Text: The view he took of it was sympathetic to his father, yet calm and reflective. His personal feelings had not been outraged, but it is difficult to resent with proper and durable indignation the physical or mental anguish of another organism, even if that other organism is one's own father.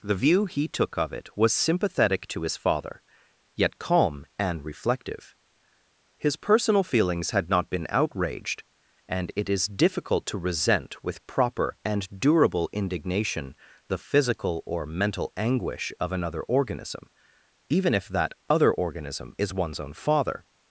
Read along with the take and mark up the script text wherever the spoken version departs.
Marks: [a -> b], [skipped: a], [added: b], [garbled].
The view he took of it was sympathetic to his father, yet calm and reflective. His personal feelings had not been outraged, [but -> and] it is difficult to resent with proper and durable indignation the physical or mental anguish of another organism, even if that other organism is one's own father.